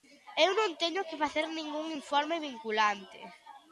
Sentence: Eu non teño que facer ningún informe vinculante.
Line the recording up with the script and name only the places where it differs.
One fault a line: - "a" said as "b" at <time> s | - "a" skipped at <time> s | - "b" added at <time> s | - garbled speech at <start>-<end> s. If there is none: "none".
none